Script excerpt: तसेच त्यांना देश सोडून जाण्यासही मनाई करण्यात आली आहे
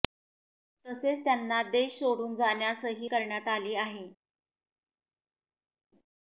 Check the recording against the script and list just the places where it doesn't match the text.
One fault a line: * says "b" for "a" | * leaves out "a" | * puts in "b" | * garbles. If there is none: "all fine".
* leaves out "मनाई"